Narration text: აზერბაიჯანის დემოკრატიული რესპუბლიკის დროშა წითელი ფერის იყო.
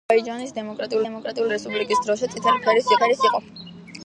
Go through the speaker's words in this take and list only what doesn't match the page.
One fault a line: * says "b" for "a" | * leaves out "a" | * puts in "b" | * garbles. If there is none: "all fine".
* puts in "დემოკრატიული"
* puts in "ფერის"